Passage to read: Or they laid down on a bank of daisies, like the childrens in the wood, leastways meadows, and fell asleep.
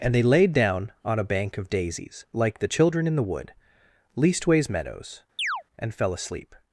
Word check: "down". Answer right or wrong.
right